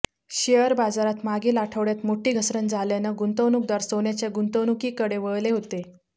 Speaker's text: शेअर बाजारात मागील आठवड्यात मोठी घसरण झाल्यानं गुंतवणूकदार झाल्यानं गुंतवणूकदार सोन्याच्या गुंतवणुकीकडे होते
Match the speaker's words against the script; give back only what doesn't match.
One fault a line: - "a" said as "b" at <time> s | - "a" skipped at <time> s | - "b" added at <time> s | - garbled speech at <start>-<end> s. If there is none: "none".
- "झाल्यानं गुंतवणूकदार" skipped at 3.8 s
- "वळले" added at 5.2 s